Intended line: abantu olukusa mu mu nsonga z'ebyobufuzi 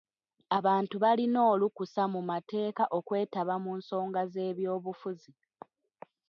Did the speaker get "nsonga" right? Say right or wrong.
right